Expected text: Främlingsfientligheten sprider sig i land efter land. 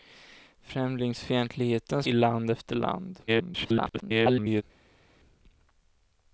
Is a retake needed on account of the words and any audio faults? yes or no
yes